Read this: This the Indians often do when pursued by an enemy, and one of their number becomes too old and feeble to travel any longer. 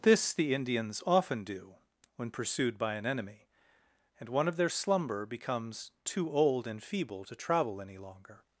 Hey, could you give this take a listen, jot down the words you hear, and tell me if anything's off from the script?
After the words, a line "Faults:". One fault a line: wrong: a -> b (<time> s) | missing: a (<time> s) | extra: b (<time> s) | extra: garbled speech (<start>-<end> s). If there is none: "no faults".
This the Indians often do when pursued by an enemy, and one of their slumber becomes too old and feeble to travel any longer.
Faults:
wrong: number -> slumber (4.7 s)